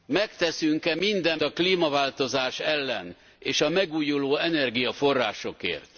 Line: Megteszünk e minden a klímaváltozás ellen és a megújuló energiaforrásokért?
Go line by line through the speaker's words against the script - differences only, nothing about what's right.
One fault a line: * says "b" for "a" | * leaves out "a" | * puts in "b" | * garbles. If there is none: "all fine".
all fine